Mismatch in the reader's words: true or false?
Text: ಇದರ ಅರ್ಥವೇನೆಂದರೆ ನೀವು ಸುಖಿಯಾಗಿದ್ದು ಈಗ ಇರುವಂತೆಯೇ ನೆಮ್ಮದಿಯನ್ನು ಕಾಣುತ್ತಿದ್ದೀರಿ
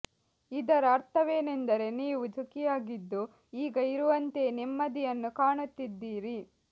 false